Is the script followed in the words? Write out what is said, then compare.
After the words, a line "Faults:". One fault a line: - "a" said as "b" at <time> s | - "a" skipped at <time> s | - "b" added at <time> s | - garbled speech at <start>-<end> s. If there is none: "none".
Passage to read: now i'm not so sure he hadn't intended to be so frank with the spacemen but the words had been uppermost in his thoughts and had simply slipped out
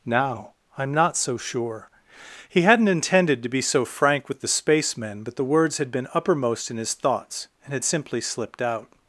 now i'm not so sure he hadn't intended to be so frank with the spacemen but the words had been uppermost in his thoughts and had simply slipped out
Faults:
none